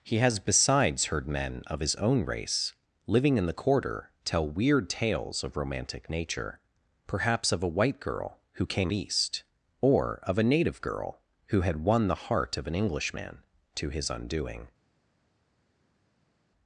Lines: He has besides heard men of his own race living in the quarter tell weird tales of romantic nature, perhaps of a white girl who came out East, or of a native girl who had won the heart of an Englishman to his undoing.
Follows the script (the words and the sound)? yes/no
no